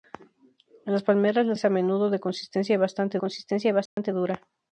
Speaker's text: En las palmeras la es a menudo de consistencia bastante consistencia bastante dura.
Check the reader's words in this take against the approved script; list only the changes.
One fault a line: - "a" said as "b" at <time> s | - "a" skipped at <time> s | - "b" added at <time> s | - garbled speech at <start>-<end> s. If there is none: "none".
none